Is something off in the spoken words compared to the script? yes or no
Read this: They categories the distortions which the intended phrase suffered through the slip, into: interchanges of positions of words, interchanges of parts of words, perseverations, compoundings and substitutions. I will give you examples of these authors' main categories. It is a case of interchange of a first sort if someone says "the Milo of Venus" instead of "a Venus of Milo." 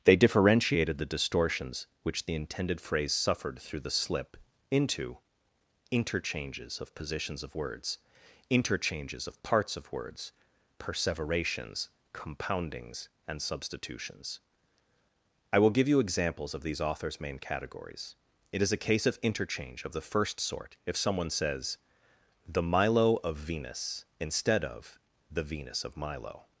yes